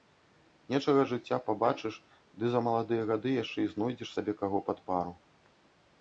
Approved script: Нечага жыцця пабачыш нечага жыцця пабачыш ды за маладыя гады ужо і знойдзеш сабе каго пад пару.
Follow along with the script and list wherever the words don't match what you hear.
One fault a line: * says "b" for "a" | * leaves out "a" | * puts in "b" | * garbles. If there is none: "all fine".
* leaves out "нечага жыцця пабачыш"
* says "яшчэ" for "ужо"